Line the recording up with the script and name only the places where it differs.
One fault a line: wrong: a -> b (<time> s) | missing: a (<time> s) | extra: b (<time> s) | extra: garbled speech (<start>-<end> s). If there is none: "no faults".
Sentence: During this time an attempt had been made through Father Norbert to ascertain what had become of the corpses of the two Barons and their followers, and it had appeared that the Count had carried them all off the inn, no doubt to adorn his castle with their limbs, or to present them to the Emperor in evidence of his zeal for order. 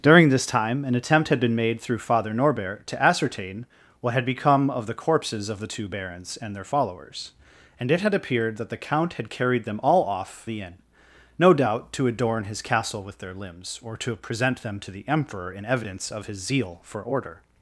no faults